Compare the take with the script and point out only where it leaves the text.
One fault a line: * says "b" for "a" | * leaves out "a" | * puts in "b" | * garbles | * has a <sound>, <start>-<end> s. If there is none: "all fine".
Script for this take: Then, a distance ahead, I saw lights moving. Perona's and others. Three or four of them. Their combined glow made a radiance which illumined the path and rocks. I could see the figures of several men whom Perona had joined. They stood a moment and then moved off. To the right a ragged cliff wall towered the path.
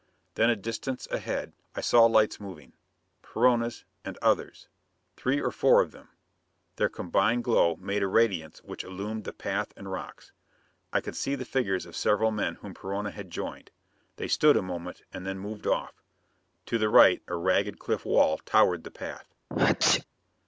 * has a sneeze, 19.5-20.0 s